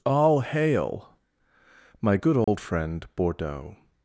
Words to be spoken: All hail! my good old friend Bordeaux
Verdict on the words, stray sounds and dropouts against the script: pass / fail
fail